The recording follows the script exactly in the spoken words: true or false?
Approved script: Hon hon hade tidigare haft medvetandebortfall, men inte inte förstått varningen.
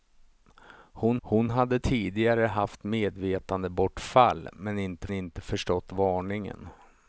true